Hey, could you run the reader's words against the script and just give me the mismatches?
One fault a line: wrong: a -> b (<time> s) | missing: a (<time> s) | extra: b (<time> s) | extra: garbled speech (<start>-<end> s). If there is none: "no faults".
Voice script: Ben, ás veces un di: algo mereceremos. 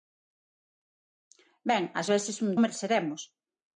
missing: di algo (2.5 s)